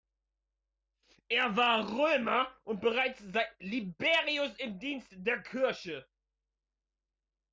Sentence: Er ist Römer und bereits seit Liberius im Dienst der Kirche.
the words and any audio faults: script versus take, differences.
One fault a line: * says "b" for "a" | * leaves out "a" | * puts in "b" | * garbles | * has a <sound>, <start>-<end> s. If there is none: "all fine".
* says "war" for "ist"